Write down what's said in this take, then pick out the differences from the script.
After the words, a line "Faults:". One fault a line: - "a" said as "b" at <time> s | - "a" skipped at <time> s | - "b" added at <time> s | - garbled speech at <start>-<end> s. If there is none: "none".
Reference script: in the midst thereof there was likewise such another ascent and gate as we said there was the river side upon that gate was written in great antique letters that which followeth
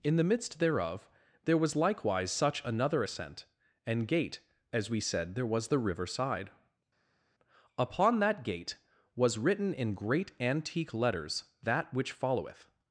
in the midst thereof there was likewise such another ascent and gate as we said there was the river side upon that gate was written in great antique letters that which followeth
Faults:
none